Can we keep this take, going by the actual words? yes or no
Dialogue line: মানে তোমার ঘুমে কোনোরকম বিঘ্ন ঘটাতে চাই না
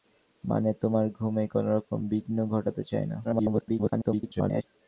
no